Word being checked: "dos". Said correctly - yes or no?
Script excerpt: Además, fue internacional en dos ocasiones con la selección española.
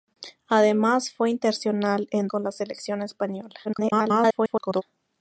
no